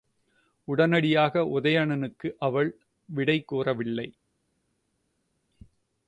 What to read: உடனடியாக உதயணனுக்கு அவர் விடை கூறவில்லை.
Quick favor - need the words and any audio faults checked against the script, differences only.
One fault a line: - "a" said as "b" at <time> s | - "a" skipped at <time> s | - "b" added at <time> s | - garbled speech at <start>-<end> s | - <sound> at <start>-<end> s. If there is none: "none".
- "அவர்" said as "அவள்" at 2.4 s